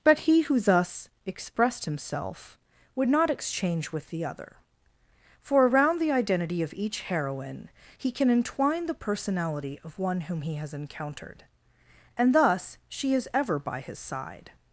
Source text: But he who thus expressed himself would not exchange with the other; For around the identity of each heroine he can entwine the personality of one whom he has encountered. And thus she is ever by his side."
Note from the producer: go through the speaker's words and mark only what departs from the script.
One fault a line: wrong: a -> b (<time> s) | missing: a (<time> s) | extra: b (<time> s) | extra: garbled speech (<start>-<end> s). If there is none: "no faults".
no faults